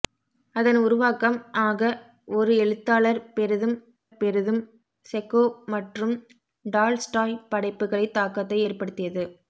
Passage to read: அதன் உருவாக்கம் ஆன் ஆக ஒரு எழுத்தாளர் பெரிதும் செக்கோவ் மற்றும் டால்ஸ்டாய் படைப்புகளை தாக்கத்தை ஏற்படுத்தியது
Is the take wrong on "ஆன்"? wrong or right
wrong